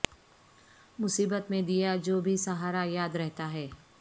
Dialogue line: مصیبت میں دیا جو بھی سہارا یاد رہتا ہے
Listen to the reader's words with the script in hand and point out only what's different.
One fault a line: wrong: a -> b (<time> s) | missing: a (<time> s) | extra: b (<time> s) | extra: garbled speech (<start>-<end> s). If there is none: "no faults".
no faults